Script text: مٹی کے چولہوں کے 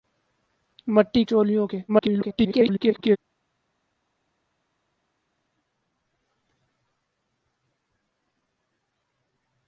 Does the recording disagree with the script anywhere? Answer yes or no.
yes